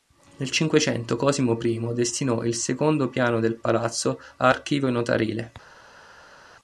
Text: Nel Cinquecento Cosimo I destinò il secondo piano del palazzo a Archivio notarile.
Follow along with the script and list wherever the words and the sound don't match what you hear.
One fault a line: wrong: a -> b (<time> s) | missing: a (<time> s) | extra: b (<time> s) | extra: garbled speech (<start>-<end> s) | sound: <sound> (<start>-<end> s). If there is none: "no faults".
no faults